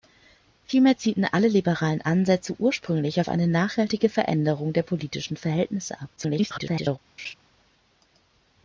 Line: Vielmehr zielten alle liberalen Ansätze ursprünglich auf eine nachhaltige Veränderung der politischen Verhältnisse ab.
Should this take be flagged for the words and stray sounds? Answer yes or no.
yes